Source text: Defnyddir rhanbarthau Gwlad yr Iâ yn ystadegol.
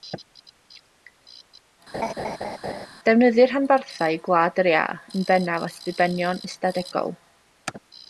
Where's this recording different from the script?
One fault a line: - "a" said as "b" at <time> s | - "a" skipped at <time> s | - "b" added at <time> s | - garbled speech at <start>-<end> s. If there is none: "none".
- "bennaf at ddibenion" added at 5.3 s